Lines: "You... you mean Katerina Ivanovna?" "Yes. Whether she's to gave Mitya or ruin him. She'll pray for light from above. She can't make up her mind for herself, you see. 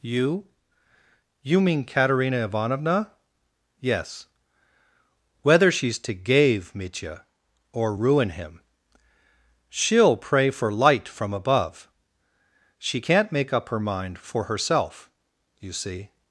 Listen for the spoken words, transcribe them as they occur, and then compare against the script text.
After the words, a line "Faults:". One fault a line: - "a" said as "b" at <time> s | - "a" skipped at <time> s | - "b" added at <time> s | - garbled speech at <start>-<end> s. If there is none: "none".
"You... you mean Katerina Ivanovna?" "Yes. Whether she's to gave Mitya or ruin him. She'll pray for light from above. She can't make up her mind for herself, you see.
Faults:
none